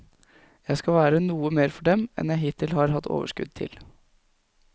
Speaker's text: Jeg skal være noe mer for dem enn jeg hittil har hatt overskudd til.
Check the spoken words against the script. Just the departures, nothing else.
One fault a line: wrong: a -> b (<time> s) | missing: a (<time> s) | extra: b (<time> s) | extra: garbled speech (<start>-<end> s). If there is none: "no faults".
no faults